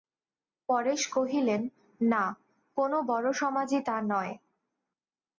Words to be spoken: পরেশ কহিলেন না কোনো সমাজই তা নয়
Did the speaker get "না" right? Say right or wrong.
right